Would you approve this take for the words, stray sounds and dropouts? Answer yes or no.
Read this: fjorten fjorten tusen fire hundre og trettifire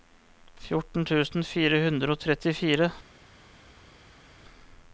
no